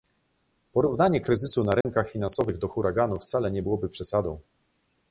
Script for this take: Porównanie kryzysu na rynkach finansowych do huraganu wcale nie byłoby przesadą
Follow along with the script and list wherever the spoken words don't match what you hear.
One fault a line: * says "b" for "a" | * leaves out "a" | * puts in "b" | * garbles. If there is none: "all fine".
all fine